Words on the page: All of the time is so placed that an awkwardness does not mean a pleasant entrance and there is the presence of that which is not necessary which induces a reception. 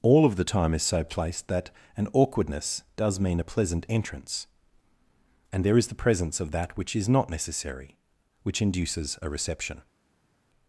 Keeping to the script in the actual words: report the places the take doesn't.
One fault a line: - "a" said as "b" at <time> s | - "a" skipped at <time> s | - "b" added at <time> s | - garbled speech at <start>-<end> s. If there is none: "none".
- "not" skipped at 3.2 s